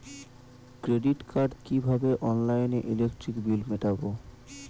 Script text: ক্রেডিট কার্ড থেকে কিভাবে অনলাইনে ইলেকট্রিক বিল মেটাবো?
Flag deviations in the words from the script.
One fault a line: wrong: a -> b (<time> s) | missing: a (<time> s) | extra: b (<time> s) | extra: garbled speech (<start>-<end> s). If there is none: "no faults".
missing: থেকে (1.5 s)